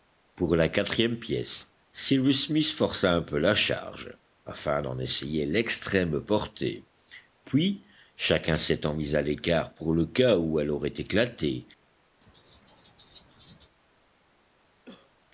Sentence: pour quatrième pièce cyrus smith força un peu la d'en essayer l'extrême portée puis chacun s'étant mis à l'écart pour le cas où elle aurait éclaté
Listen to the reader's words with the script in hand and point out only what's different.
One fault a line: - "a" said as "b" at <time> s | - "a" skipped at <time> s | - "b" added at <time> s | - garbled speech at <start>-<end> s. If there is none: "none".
- "la" added at 0.6 s
- "charge afin" added at 3.5 s